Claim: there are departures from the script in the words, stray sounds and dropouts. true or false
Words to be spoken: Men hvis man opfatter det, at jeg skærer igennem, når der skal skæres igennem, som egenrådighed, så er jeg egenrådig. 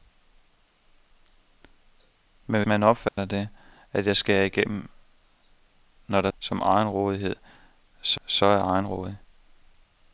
true